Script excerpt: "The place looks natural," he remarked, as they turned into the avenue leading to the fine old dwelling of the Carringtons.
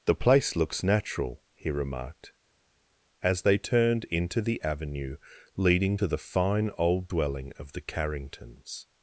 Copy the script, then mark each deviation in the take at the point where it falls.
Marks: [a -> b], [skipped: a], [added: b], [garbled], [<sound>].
"The place looks natural," he remarked, as they turned into the avenue leading to the fine old dwelling of the Carringtons.